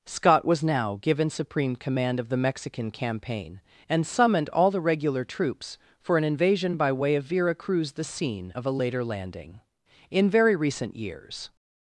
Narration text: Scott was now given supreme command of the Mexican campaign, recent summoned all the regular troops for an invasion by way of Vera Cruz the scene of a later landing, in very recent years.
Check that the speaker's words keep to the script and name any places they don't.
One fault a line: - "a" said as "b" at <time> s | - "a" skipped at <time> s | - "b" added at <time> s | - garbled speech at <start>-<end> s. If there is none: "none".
- "recent" said as "and" at 3.9 s